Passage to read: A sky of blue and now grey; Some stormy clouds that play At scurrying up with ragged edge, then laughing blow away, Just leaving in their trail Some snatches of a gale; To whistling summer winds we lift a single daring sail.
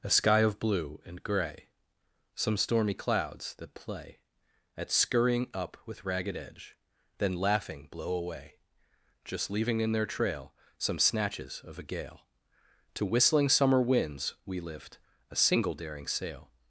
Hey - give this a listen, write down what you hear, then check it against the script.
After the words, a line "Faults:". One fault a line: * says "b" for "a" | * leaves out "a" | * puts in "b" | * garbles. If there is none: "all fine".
A sky of blue and grey; Some stormy clouds that play At scurrying up with ragged edge, then laughing blow away, Just leaving in their trail Some snatches of a gale; To whistling summer winds we lift a single daring sail.
Faults:
* leaves out "now"